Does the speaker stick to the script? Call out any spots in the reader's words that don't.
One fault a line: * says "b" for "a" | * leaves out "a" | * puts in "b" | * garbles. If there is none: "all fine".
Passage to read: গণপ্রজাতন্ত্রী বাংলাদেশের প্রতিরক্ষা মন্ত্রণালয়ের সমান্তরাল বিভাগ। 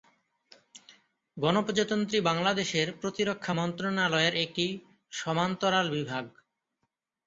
* puts in "একটি"